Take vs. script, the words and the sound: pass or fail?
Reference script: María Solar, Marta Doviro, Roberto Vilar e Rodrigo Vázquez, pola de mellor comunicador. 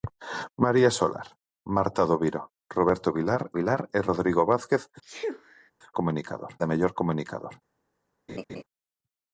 fail